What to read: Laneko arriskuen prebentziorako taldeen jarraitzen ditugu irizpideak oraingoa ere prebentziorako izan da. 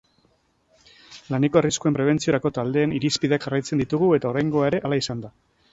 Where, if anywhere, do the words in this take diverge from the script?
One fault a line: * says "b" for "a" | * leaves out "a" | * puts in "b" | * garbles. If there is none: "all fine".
* puts in "irizpideak"
* says "eta" for "irizpideak"
* says "hala" for "prebentziorako"